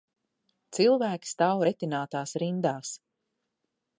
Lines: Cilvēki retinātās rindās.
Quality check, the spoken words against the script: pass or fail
fail